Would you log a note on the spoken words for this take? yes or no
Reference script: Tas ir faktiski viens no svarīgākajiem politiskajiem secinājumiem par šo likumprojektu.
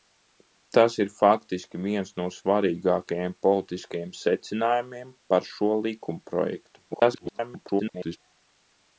yes